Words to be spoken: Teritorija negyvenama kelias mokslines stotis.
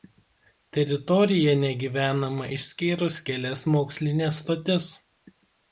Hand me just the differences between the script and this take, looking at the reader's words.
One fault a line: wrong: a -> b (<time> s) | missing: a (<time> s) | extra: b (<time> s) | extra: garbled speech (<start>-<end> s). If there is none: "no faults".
extra: išskyrus (2.6 s)